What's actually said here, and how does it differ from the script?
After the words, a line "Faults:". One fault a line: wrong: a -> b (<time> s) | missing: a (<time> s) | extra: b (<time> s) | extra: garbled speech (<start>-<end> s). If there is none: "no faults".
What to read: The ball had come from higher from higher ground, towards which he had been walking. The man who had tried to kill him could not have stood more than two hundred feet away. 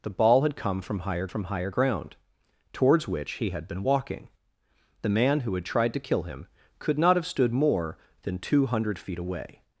The ball had come from higher from higher ground, towards which he had been walking. The man who had tried to kill him could not have stood more than two hundred feet away.
Faults:
no faults